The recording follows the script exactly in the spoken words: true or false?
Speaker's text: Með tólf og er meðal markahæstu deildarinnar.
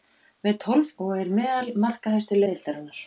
true